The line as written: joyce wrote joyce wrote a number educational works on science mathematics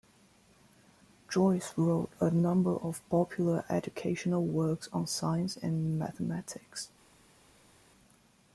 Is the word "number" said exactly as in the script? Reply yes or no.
no